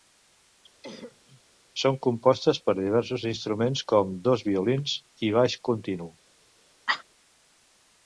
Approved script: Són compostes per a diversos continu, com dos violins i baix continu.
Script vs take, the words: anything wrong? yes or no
yes